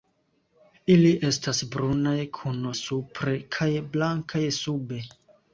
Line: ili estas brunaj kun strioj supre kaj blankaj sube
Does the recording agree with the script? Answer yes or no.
no